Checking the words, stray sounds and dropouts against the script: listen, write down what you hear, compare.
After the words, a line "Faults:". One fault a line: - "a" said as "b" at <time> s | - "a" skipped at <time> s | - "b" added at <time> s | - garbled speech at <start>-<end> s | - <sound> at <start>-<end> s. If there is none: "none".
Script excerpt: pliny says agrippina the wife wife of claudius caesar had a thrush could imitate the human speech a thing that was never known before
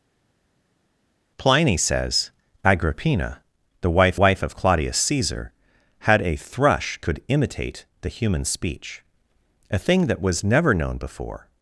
pliny says agrippina the wife wife of claudius caesar had a thrush could imitate the human speech a thing that was never known before
Faults:
none